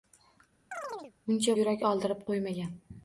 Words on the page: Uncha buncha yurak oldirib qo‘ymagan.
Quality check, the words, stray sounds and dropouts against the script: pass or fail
fail